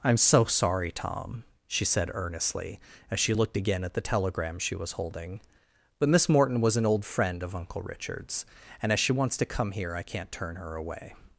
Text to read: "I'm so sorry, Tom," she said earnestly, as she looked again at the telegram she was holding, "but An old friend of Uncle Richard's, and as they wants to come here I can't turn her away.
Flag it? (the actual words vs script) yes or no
yes